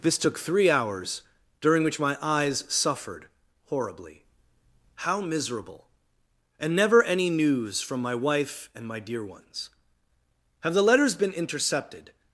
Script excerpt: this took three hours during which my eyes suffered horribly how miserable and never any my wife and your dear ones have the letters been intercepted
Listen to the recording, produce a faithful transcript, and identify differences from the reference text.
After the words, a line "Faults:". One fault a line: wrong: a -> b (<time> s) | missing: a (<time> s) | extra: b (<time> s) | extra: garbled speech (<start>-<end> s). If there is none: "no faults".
this took three hours during which my eyes suffered horribly how miserable and never any news from my wife and my dear ones have the letters been intercepted
Faults:
extra: news from (7.3 s)
wrong: your -> my (8.9 s)